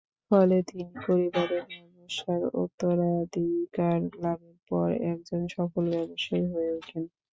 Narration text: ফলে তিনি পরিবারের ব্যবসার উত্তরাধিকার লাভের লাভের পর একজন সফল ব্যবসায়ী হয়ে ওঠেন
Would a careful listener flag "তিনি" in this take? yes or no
no